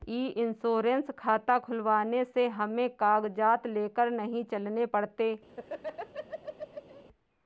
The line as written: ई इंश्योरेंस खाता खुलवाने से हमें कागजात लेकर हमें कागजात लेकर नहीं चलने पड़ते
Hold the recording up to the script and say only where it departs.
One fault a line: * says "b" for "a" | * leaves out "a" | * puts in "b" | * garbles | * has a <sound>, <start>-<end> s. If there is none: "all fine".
* leaves out "हमें कागजात लेकर"
* has a laugh, 5.5-7.0 s